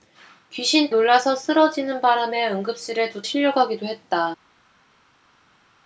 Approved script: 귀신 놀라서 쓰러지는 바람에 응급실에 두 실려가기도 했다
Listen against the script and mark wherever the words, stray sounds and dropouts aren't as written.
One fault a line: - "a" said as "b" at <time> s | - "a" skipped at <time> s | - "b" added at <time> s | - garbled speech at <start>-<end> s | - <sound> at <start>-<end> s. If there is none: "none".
none